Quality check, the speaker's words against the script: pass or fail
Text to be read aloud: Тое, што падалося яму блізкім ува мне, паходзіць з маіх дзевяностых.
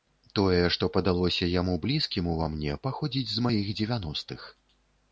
pass